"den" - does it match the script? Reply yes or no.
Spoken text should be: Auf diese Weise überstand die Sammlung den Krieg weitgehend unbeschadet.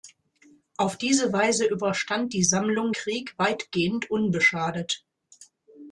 no